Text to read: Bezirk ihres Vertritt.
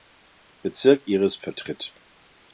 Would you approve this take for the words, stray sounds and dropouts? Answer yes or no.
yes